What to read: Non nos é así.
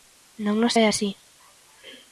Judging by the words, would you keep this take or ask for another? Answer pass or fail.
pass